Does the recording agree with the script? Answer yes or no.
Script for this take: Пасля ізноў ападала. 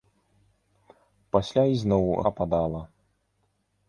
yes